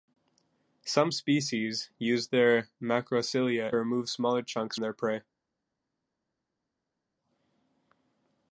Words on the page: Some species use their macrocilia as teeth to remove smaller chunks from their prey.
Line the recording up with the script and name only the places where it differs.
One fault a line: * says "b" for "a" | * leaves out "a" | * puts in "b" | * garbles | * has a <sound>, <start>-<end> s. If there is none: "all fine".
* leaves out "as teeth to"
* leaves out "from"